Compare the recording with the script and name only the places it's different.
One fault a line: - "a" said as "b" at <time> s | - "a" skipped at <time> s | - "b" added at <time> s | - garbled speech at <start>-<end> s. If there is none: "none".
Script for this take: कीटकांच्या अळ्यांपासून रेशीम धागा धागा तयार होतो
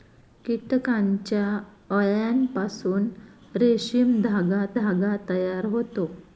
none